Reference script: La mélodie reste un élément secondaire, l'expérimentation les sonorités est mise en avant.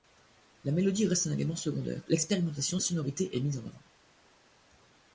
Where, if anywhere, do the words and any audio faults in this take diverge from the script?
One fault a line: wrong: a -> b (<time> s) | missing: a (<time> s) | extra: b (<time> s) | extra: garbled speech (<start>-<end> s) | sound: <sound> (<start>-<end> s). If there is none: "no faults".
no faults